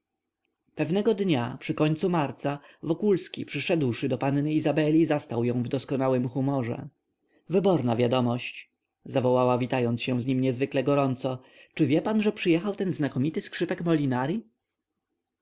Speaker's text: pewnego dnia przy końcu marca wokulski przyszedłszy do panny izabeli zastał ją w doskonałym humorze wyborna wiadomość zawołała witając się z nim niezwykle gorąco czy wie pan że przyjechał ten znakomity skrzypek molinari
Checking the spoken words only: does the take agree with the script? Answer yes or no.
yes